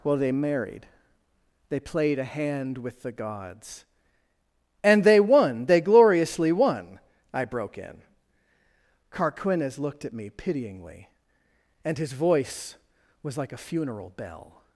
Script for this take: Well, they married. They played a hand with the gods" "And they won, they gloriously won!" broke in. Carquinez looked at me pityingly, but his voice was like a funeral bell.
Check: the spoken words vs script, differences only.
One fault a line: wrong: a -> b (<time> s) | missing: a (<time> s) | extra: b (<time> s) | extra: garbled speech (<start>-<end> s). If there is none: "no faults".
extra: I (7.3 s)
wrong: but -> and (11.8 s)